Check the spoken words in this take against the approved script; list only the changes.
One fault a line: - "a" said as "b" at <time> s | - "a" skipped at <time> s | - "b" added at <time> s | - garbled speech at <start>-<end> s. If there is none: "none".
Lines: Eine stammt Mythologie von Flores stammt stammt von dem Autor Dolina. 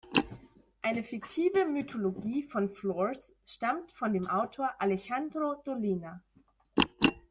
- "stammt" said as "fiktive" at 1.0 s
- "stammt" skipped at 3.9 s
- "Alejandro" added at 4.8 s